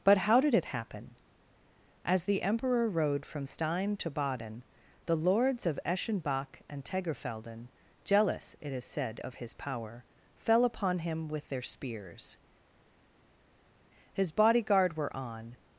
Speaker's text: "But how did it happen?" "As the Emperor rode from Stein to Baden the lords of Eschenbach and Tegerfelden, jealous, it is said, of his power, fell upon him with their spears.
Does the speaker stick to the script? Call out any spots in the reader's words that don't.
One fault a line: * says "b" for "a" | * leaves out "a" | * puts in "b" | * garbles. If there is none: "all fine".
* puts in "His bodyguard were on"